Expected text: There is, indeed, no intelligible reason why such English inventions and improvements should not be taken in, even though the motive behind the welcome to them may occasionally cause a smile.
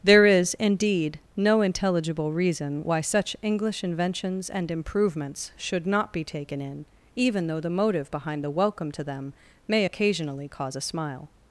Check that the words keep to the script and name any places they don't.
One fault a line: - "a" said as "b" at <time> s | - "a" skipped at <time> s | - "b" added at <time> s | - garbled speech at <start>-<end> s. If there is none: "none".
none